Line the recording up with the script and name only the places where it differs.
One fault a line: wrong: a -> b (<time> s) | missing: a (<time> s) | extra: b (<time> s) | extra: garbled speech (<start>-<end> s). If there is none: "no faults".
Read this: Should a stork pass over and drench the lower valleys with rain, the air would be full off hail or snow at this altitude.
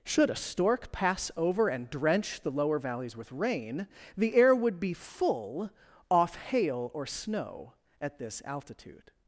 no faults